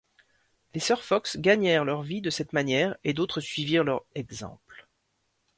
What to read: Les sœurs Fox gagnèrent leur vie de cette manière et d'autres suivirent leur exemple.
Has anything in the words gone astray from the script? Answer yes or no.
no